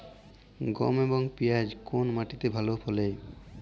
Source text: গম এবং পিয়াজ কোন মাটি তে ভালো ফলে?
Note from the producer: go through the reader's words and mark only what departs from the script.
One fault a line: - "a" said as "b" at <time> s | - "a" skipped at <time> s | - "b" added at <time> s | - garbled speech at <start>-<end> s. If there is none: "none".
none